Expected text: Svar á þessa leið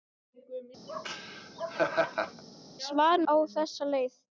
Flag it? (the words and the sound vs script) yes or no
yes